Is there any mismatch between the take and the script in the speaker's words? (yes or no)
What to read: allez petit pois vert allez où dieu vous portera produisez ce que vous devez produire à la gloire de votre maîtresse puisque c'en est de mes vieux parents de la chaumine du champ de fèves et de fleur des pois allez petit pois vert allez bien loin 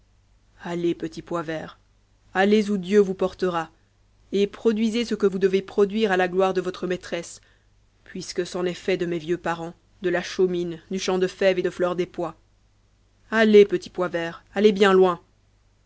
yes